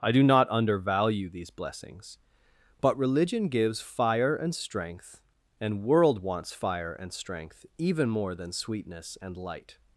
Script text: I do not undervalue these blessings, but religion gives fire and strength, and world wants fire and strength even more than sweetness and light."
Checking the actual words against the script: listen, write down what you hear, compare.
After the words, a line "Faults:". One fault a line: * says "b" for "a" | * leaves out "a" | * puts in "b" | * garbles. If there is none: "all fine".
I do not undervalue these blessings, but religion gives fire and strength, and world wants fire and strength even more than sweetness and light."
Faults:
all fine